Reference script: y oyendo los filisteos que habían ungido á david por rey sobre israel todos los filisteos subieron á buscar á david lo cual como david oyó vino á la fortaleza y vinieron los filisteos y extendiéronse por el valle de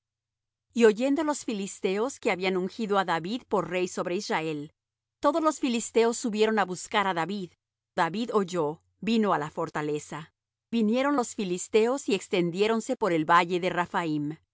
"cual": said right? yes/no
no